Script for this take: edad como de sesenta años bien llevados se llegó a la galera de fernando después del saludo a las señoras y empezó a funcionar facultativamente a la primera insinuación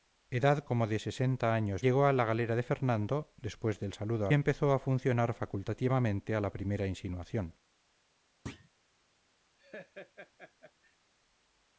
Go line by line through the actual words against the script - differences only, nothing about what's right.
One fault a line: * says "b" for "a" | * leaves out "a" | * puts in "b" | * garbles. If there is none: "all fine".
* leaves out "bien llevados se"
* leaves out "las señoras y"